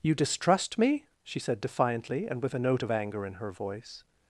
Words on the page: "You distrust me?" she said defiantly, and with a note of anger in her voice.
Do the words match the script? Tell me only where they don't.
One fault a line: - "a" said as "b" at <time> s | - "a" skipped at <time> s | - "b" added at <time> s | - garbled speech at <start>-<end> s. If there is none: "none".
none